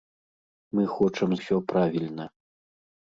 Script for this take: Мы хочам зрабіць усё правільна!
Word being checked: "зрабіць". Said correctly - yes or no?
no